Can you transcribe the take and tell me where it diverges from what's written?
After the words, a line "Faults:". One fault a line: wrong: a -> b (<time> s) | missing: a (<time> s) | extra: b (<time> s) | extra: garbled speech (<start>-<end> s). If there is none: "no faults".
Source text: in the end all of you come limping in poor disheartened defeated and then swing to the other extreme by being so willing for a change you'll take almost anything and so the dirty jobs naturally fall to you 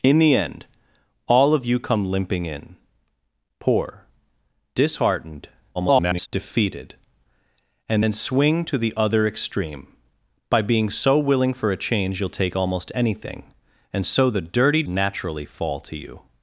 in the end all of you come limping in poor disheartened [garbled] defeated and then swing to the other extreme by being so willing for a change you'll take almost anything and so the dirty naturally fall to you
Faults:
extra: garbled speech (5.7-6.3 s)
missing: jobs (14.8 s)